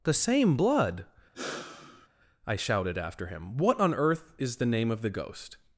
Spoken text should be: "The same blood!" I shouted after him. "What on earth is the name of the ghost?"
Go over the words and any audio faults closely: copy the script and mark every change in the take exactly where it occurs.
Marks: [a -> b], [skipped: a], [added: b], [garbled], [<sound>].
"The same blood!" [sigh] I shouted after him. "What on earth is the name of the ghost?"